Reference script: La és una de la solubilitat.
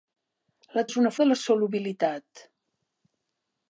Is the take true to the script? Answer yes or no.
yes